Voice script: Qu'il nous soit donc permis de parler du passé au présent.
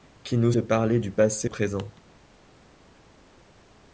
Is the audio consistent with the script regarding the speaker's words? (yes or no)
no